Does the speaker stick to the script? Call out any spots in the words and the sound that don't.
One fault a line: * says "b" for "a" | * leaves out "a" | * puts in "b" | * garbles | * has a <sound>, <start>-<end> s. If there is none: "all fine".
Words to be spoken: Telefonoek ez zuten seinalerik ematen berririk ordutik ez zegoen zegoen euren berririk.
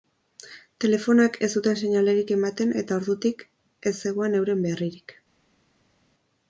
* says "eta" for "berririk"
* leaves out "zegoen"